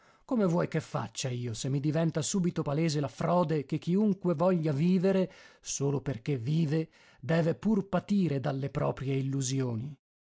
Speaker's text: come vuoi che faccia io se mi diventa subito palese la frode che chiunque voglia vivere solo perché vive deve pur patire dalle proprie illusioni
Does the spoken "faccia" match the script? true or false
true